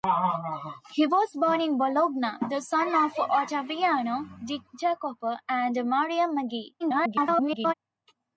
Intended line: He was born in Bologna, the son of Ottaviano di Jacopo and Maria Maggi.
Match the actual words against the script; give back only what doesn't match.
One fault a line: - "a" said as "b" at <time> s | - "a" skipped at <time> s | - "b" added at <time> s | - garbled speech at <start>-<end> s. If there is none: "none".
- garbled speech at 6.8-7.7 s